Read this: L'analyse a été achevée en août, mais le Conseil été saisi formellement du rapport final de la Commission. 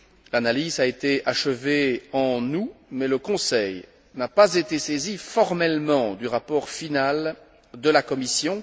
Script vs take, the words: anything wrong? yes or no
yes